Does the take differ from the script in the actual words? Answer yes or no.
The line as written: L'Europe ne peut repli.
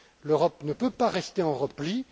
yes